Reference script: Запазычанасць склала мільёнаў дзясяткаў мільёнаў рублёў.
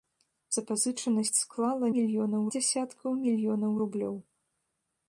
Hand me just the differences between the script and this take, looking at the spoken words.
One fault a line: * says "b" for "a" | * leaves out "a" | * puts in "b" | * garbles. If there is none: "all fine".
all fine